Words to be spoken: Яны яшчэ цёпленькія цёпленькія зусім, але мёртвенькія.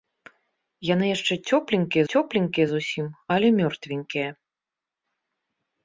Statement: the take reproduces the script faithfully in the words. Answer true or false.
true